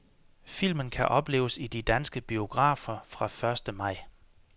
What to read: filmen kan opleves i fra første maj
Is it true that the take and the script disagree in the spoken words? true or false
true